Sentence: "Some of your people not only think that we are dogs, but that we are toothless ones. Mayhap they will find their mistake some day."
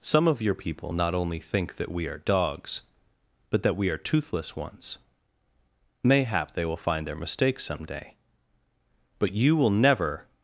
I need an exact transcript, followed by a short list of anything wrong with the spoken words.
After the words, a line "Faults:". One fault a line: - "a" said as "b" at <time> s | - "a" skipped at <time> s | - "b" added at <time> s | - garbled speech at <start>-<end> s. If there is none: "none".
"Some of your people not only think that we are dogs, but that we are toothless ones. Mayhap they will find their mistake some day." "But you will never
Faults:
- "But you will never" added at 9.2 s